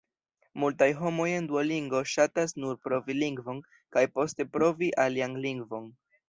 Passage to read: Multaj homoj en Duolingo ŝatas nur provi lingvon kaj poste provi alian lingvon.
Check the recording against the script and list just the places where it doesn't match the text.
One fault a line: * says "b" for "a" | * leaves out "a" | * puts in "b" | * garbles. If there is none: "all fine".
all fine